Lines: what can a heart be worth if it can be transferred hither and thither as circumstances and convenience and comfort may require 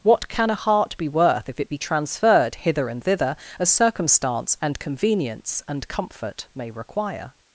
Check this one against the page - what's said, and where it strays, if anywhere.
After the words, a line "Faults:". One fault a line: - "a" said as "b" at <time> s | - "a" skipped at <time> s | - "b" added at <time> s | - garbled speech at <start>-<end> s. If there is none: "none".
what can a heart be worth if it be transferred hither and thither as circumstance and convenience and comfort may require
Faults:
- "can" skipped at 1.7 s
- "circumstances" said as "circumstance" at 3.7 s